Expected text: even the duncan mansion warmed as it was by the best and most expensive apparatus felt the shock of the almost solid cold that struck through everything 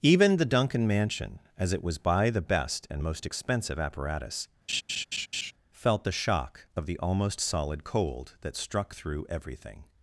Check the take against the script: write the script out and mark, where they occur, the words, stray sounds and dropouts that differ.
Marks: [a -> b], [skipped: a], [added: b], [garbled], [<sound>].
even the duncan mansion [skipped: warmed] as it was by the best and most expensive apparatus [laugh] felt the shock of the almost solid cold that struck through everything